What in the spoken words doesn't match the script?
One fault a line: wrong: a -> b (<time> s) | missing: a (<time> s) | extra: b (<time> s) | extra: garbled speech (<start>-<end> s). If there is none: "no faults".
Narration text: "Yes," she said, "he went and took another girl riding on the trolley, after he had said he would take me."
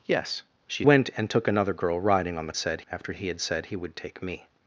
missing: said he (0.8 s)
wrong: trolley -> said (2.5 s)